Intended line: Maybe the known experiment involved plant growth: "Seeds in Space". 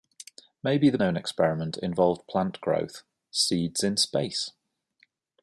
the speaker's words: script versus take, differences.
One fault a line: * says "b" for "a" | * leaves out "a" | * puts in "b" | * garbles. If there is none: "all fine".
all fine